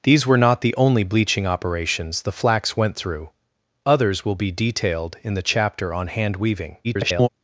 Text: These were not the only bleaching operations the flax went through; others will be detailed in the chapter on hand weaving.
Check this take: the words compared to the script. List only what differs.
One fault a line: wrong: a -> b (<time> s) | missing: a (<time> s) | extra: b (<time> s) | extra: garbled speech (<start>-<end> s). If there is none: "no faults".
extra: garbled speech (6.8-7.3 s)